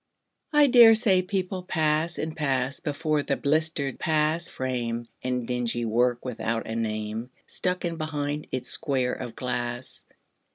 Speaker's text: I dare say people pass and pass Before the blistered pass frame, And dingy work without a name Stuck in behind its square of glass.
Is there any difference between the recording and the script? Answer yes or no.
no